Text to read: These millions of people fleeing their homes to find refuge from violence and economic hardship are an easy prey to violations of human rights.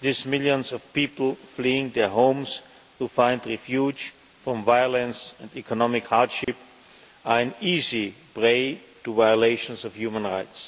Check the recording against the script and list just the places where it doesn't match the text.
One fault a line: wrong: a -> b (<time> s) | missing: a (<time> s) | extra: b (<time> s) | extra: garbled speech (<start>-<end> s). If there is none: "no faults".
no faults